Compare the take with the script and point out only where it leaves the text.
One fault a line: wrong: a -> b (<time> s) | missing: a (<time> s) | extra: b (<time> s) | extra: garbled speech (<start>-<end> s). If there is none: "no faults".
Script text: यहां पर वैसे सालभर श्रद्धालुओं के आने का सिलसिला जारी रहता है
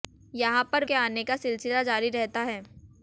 missing: वैसे सालभर श्रद्धालुओं (0.8 s)